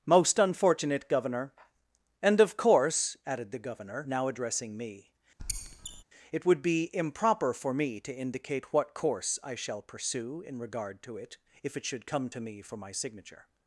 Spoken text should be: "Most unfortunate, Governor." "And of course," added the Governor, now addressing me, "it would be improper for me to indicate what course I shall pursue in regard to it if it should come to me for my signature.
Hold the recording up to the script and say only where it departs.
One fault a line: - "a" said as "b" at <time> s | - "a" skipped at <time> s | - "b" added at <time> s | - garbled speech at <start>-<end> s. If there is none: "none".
none